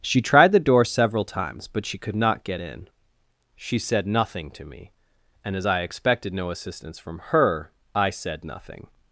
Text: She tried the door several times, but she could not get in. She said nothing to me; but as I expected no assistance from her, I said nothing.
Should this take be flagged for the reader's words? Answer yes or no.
yes